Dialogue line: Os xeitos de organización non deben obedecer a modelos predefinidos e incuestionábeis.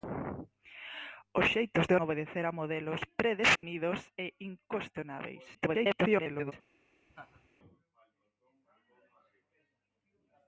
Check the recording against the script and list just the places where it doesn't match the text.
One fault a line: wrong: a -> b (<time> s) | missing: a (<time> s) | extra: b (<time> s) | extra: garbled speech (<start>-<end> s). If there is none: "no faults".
missing: organización non deben (1.9 s)
extra: garbled speech (5.5-6.5 s)